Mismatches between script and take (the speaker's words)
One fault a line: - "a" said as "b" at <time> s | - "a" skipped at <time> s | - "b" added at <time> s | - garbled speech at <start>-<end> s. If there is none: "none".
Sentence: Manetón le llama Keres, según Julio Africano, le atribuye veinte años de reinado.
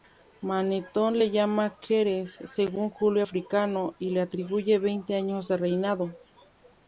- "y" added at 4.0 s